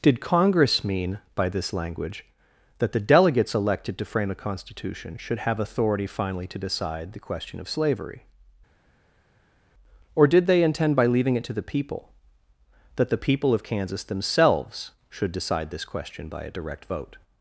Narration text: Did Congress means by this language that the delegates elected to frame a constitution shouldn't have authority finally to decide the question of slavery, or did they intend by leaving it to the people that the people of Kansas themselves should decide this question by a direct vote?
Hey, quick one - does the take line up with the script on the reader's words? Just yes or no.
no